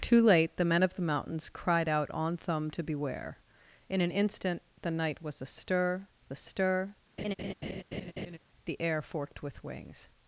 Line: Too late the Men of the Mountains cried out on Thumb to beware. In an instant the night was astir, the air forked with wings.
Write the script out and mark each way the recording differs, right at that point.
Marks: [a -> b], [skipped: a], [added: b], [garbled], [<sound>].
Too late the Men of the Mountains cried out on Thumb to beware. In an instant the night was astir, [added: astir] [laugh] the air forked with wings.